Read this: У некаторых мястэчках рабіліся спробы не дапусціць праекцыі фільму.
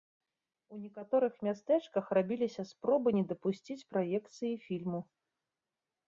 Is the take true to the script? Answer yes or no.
yes